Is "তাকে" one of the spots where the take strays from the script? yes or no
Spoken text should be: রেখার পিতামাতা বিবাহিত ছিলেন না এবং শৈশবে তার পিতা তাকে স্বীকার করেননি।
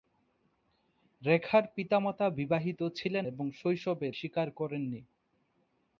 yes